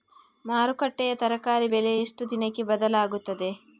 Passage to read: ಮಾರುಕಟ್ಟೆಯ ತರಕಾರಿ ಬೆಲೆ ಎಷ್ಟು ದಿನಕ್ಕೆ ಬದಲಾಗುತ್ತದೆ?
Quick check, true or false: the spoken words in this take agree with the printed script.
true